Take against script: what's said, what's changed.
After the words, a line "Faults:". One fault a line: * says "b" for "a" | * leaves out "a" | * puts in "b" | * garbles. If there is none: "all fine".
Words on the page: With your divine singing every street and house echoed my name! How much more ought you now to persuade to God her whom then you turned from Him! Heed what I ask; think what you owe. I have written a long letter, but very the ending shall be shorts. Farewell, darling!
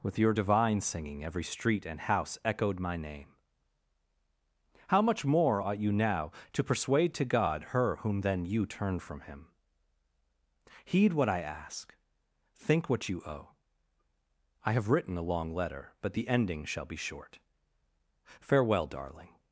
With your divine singing every street and house echoed my name! How much more ought you now to persuade to God her whom then you turned from Him! Heed what I ask; think what you owe. I have written a long letter, but the ending shall be short. Farewell, darling!
Faults:
* leaves out "very"
* says "short" for "shorts"